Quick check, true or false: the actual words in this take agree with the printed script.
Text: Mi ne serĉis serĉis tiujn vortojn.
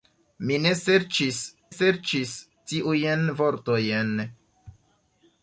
true